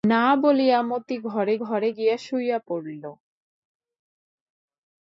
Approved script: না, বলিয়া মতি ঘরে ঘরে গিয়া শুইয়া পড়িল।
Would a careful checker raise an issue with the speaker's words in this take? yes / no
no